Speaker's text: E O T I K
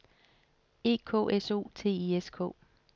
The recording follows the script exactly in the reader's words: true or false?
false